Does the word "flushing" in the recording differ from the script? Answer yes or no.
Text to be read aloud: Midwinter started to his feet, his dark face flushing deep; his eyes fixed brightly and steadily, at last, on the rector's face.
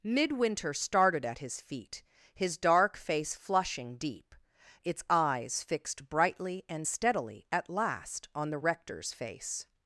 no